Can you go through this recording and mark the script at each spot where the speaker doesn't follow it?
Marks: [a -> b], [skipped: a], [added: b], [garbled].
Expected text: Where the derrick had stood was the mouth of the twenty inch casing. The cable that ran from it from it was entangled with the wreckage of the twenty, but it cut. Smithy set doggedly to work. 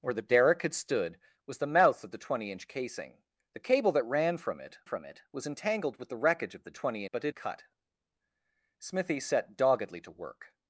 Where the derrick had stood was the mouth of the twenty inch casing. The cable that ran from it from it was entangled with the wreckage of the twenty, but it cut. Smithy set doggedly to work.